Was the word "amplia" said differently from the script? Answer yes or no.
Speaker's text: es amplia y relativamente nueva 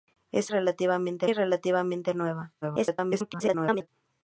yes